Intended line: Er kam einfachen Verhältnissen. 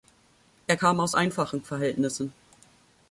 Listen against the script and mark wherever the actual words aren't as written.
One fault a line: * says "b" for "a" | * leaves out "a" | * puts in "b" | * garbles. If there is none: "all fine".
* puts in "aus"